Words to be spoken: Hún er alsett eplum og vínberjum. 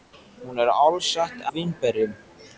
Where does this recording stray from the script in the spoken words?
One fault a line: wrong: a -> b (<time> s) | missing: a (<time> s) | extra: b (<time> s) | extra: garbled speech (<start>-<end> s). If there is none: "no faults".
missing: eplum (1.4 s)